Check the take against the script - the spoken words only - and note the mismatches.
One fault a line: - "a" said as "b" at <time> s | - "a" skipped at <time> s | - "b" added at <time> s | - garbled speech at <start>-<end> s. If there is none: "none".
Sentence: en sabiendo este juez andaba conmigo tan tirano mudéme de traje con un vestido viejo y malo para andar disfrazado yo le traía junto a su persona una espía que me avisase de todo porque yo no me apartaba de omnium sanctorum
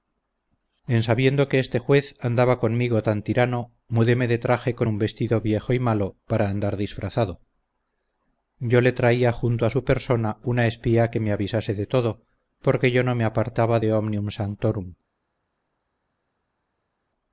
- "que" added at 1.5 s